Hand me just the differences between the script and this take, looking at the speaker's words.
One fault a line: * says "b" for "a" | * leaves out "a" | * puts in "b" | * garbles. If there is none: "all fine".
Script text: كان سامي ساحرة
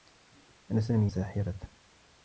all fine